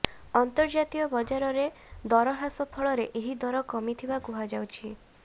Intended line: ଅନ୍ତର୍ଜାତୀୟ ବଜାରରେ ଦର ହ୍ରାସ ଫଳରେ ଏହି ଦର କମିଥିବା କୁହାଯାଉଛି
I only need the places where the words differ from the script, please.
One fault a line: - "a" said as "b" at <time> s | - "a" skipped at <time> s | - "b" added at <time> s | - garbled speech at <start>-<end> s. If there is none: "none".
none